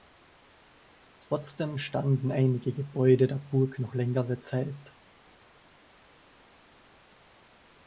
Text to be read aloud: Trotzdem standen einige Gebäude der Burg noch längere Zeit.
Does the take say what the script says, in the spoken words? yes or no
yes